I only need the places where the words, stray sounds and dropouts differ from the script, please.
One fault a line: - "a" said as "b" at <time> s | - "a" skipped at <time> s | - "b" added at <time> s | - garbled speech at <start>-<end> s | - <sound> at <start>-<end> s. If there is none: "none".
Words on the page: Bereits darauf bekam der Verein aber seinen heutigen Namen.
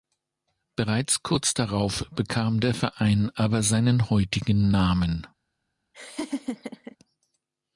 - "kurz" added at 1.2 s
- laugh at 5.9-7.0 s